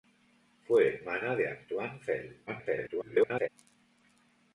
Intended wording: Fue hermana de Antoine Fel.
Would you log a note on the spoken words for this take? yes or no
yes